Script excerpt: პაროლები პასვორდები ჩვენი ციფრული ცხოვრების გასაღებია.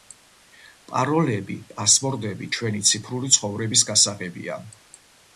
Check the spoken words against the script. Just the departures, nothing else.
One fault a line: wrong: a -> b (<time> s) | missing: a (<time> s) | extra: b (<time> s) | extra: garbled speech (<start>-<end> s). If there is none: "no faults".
no faults